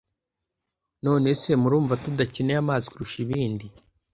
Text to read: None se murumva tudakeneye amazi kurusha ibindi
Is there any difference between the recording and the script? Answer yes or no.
no